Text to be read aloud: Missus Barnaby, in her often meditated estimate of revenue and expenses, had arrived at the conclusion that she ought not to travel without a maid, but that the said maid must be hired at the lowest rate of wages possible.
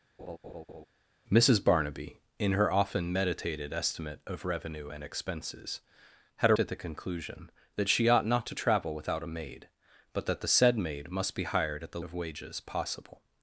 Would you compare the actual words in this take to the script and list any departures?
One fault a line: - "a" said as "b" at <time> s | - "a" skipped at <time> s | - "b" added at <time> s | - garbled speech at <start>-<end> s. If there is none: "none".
- "arrived" skipped at 6.5 s
- "lowest rate" skipped at 12.0 s